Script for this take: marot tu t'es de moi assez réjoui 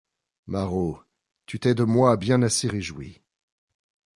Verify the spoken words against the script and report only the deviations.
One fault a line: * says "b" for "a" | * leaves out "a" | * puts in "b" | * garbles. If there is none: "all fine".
* puts in "bien"